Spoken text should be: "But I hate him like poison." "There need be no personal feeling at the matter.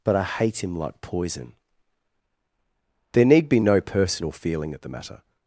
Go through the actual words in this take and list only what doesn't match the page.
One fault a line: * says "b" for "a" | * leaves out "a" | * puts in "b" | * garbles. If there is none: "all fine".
all fine